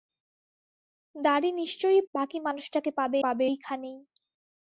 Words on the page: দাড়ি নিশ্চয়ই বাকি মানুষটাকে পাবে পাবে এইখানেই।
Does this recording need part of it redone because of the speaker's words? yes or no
no